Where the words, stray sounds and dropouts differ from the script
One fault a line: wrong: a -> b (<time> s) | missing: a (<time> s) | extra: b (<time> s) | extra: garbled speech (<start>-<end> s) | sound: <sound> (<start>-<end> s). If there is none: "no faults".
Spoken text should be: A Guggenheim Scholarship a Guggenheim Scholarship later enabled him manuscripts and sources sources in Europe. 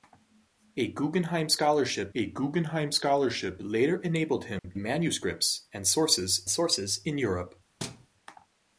sound: dropout (4.6-4.6 s)
sound: thud (7.8-8.1 s)